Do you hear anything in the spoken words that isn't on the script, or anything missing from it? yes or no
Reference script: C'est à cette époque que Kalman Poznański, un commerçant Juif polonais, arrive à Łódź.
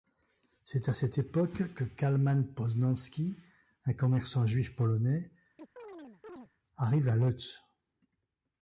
no